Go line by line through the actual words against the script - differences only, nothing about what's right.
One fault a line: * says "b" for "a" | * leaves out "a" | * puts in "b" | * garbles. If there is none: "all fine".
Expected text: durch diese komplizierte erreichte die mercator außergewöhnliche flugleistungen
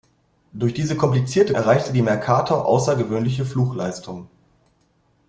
all fine